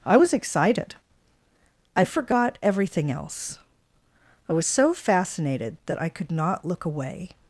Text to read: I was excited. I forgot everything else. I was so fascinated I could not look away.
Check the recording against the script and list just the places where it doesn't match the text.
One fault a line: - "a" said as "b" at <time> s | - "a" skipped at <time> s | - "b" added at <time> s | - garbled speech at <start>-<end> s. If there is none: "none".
- "that" added at 5.9 s